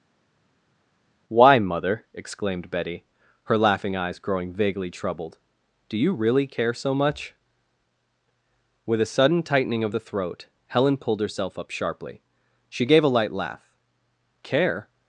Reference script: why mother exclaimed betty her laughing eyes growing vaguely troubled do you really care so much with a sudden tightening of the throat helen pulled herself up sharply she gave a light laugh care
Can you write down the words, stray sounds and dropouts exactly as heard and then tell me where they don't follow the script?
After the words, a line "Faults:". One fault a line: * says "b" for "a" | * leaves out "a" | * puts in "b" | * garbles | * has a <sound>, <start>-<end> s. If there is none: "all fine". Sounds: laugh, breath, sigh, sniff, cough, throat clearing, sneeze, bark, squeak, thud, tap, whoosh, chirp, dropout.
why mother exclaimed betty her laughing eyes growing vaguely troubled do you really care so much with a sudden tightening of the throat helen pulled herself up sharply she gave a light laugh care
Faults:
all fine